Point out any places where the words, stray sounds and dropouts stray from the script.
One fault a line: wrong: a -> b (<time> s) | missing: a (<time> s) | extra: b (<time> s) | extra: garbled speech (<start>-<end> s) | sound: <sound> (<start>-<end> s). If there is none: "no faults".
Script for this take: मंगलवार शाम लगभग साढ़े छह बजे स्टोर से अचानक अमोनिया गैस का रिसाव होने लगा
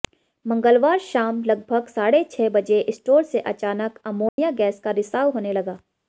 sound: dropout (4.3-4.4 s)